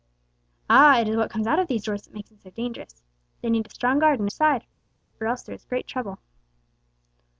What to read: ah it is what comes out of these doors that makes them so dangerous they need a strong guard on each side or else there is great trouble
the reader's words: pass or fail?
fail